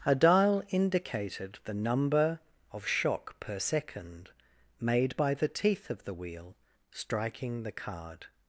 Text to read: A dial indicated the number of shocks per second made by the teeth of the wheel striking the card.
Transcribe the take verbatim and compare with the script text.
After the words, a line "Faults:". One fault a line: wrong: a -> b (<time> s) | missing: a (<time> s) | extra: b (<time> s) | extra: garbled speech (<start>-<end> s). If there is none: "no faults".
A dial indicated the number of shock per second made by the teeth of the wheel striking the card.
Faults:
wrong: shocks -> shock (2.9 s)